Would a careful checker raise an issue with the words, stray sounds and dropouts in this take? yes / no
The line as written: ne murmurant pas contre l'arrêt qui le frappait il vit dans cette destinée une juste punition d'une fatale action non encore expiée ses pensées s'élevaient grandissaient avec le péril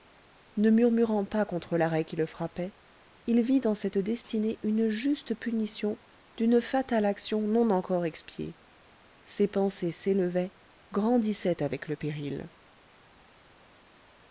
no